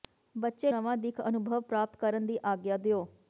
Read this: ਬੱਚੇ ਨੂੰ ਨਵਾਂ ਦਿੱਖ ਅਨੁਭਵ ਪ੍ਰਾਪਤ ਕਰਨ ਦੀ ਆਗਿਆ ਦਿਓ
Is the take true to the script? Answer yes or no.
no